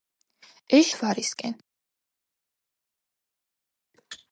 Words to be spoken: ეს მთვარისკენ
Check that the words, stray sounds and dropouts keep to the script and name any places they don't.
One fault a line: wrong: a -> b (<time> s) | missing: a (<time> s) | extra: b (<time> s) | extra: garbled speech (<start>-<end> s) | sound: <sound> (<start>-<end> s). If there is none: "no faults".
no faults